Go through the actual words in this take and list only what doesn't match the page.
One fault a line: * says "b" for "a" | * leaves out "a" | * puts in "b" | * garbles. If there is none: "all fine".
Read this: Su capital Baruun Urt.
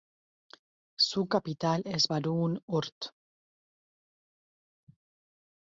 * puts in "es"